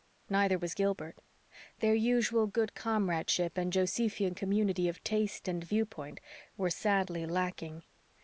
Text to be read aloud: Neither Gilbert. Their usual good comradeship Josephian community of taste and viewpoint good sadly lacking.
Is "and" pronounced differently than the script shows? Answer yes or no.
no